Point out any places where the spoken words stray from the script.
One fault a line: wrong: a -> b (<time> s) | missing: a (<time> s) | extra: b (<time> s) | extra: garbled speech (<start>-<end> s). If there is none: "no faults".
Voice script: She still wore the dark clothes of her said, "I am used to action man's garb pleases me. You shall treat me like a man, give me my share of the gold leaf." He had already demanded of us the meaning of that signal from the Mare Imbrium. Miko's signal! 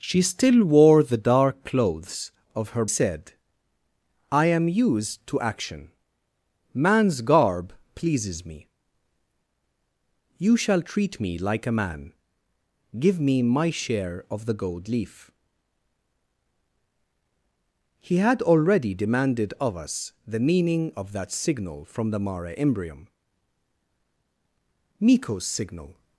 no faults